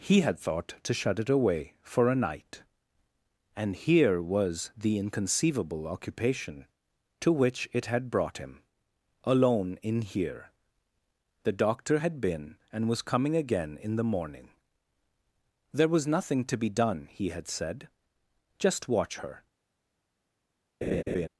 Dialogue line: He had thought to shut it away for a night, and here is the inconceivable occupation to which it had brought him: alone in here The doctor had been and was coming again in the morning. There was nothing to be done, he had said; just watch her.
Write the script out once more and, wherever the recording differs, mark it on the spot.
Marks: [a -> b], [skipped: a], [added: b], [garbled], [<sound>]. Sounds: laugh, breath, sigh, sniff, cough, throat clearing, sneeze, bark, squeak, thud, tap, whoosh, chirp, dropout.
He had thought to shut it away for a night, and here [is -> was] the inconceivable occupation to which it had brought him: alone in here The doctor had been and was coming again in the morning. There was nothing to be done, he had said; just watch her. [laugh]